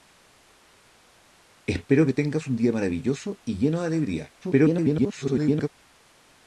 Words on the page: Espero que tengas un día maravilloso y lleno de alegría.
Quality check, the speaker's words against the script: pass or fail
fail